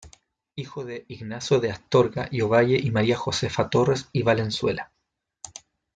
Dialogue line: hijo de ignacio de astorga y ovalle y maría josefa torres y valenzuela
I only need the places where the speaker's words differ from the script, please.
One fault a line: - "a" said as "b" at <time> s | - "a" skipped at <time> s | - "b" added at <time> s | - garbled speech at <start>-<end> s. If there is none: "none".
none